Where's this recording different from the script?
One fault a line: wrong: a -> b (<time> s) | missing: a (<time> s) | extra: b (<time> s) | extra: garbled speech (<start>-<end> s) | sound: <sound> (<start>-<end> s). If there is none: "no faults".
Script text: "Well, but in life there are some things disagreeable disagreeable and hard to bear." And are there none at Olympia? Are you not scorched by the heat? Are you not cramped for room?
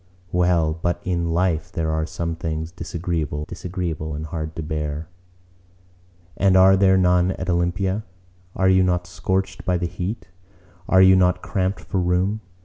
no faults